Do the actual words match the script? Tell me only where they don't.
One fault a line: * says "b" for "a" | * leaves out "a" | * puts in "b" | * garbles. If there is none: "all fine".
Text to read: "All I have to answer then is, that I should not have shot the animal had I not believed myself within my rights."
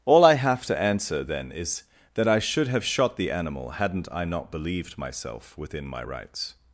* leaves out "not"
* says "hadn't" for "had"